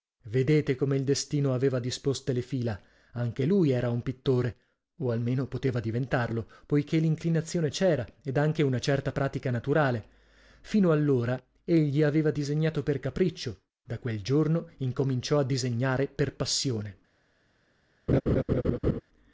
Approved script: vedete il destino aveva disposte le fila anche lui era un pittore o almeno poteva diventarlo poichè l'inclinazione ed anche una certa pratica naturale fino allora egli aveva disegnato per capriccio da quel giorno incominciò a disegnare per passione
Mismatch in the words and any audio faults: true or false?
true